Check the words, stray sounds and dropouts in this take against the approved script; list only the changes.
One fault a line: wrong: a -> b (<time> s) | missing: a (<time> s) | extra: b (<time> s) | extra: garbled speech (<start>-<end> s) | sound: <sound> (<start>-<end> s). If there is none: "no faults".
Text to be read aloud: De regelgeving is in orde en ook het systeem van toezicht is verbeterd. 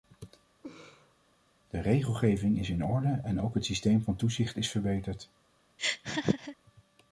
sound: laugh (0.6-1.2 s)
sound: laugh (5.8-6.6 s)